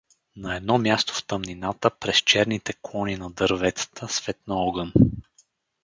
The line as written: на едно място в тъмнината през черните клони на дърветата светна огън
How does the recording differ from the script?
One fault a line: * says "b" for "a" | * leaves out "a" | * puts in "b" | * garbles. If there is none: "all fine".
all fine